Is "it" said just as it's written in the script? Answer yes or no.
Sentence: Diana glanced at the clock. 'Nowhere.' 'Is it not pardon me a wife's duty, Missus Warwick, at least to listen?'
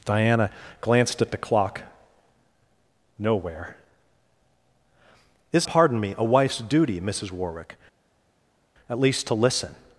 no